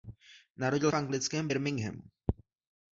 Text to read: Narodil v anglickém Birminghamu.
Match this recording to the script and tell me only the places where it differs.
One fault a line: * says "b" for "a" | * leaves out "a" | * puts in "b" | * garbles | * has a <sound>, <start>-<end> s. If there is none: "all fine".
all fine